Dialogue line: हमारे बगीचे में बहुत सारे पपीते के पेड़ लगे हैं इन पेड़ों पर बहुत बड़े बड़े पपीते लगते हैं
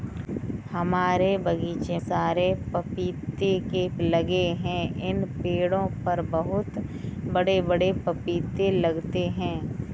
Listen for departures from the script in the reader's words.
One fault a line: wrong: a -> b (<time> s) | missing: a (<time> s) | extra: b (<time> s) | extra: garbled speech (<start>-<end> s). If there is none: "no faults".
missing: में बहुत (2.0 s)
missing: पेड़ (3.9 s)